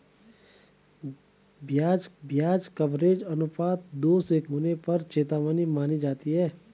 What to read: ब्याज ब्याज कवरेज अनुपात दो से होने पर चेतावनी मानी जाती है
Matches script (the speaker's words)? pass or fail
pass